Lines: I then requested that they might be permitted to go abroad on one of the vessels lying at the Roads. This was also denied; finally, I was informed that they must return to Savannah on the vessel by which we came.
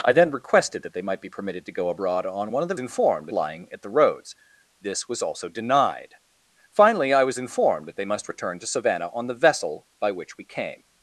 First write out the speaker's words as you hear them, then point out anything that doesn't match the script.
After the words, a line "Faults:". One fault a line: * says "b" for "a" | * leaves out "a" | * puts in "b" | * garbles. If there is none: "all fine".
I then requested that they might be permitted to go abroad on one of the informed lying at the Roads. This was also denied; finally, I was informed that they must return to Savannah on the vessel by which we came.
Faults:
* says "informed" for "vessels"